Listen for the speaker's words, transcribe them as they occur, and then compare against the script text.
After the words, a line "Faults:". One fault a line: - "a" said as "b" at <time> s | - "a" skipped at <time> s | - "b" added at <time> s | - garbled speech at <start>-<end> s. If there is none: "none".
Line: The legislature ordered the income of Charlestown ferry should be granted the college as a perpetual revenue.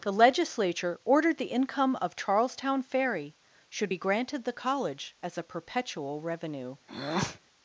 The legislature ordered the income of Charlestown ferry should be granted the college as a perpetual revenue.
Faults:
none